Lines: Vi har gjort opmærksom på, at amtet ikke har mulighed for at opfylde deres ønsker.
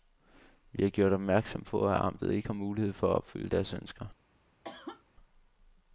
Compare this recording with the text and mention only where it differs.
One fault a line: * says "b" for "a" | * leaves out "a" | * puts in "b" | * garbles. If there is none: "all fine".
all fine